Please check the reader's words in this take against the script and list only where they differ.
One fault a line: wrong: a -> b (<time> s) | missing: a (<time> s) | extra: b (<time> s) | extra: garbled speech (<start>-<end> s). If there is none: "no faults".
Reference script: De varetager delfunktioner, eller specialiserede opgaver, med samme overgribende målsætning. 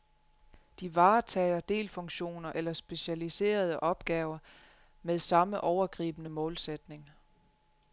no faults